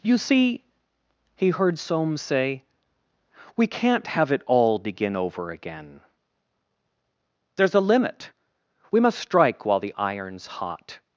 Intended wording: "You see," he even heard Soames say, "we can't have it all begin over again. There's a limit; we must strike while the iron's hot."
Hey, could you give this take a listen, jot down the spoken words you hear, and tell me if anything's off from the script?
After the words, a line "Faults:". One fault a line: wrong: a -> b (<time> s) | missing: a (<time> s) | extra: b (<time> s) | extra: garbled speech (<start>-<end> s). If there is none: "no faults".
"You see," he heard Soames say, "we can't have it all begin over again. There's a limit; we must strike while the iron's hot."
Faults:
missing: even (1.5 s)